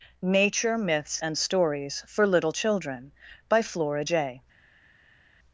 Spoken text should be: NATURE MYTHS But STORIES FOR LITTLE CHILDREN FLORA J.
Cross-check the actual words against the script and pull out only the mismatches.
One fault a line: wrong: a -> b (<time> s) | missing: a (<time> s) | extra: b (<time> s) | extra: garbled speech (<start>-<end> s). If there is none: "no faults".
wrong: But -> AND (1.2 s)
extra: BY (3.5 s)